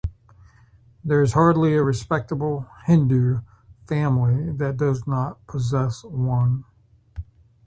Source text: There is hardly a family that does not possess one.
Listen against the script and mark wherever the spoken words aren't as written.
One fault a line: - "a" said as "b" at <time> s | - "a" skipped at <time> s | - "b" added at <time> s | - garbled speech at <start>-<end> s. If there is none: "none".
- "respectable Hindu" added at 1.8 s